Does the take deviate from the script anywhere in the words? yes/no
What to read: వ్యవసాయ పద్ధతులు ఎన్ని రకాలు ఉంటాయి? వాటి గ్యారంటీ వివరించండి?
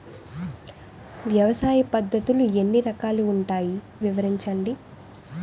yes